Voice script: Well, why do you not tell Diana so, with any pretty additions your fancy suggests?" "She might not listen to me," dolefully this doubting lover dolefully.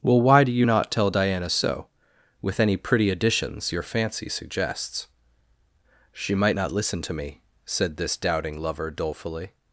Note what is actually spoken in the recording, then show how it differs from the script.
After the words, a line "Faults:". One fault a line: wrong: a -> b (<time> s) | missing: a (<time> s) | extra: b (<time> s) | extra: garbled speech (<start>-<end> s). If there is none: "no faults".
Well, why do you not tell Diana so, with any pretty additions your fancy suggests?" "She might not listen to me," said this doubting lover dolefully.
Faults:
wrong: dolefully -> said (7.6 s)